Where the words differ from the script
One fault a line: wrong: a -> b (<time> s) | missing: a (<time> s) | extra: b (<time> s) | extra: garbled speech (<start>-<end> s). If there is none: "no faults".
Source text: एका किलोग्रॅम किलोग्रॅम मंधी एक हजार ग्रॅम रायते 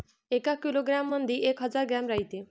missing: किलोग्रॅम (1.1 s)